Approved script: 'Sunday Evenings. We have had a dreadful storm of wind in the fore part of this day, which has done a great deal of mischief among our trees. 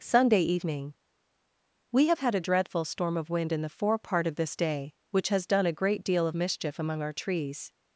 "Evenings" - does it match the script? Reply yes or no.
no